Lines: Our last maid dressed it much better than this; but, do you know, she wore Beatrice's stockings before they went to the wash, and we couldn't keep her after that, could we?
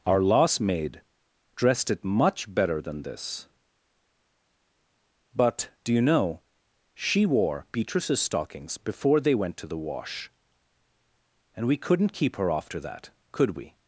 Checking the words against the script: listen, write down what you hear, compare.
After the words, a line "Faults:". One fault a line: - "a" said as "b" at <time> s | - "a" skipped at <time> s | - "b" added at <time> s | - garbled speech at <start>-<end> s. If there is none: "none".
Our last maid dressed it much better than this; but, do you know, she wore Beatrice's stockings before they went to the wash, and we couldn't keep her after that, could we?
Faults:
none